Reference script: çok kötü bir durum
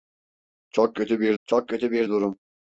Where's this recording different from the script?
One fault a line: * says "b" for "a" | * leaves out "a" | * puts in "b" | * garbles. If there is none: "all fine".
* puts in "çok kötü bir"